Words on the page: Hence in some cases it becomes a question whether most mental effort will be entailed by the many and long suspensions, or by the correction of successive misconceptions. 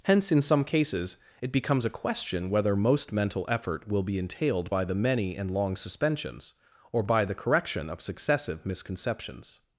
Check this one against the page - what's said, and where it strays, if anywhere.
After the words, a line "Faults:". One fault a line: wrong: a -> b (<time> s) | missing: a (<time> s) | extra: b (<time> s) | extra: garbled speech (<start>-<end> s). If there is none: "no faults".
Hence in some cases it becomes a question whether most mental effort will be entailed by the many and long suspensions, or by the correction of successive misconceptions.
Faults:
no faults